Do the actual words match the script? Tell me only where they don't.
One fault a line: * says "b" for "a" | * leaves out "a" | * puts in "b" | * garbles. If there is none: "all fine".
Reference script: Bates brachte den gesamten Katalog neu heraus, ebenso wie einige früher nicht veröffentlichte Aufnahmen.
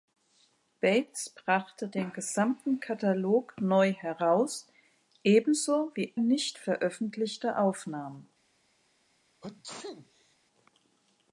* leaves out "einige früher"